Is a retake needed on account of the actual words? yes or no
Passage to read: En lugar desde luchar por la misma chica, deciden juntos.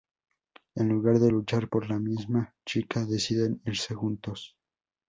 yes